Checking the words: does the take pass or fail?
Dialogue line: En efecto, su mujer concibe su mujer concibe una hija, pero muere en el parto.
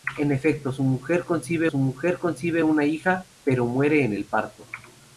pass